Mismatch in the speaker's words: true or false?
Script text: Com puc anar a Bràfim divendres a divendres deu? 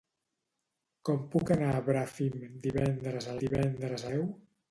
false